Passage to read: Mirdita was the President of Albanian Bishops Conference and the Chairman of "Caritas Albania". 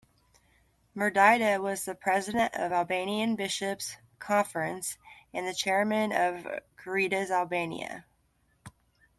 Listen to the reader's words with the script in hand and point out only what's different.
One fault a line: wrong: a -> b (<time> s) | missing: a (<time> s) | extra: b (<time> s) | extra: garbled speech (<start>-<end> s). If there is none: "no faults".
no faults